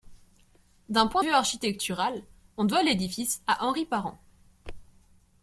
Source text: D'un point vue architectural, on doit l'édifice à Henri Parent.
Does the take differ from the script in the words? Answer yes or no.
no